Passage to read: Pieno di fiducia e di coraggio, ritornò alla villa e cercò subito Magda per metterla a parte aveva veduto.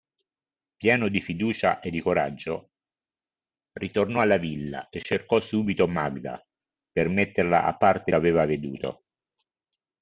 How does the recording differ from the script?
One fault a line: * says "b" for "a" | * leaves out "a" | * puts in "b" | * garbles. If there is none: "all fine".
all fine